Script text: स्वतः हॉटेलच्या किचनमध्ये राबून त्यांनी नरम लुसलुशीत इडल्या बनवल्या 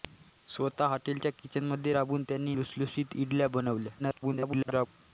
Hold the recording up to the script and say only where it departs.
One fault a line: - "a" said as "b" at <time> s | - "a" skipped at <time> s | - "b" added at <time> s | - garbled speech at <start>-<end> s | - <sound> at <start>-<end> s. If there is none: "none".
- "नरम" skipped at 2.5 s
- garbled speech at 4.0-4.9 s